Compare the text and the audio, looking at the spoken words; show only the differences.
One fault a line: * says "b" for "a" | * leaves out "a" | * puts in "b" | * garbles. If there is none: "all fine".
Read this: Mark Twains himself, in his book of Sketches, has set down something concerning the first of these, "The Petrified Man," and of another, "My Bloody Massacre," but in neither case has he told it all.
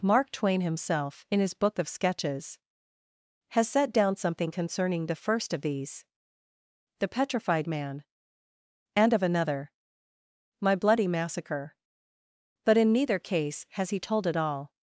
* says "Twain" for "Twains"